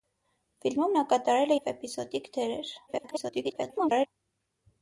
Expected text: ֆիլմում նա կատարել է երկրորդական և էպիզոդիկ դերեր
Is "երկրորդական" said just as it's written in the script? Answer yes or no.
no